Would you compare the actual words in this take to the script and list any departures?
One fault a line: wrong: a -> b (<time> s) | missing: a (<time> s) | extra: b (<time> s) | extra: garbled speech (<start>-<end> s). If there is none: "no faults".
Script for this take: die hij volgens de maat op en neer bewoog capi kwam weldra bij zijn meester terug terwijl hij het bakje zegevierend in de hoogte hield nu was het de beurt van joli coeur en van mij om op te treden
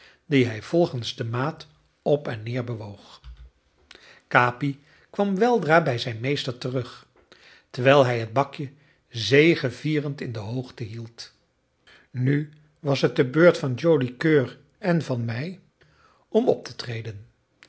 no faults